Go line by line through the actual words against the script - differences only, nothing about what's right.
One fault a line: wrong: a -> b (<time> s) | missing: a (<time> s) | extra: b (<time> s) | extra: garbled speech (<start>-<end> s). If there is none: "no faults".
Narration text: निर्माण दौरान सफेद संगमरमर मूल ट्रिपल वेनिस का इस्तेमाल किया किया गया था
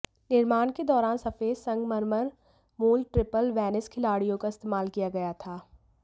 extra: के (0.7 s)
extra: खिड़कियों (3.9 s)
missing: किया (5.1 s)